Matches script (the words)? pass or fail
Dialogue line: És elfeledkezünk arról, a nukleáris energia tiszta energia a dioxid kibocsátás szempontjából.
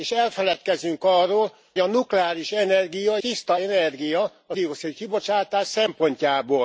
pass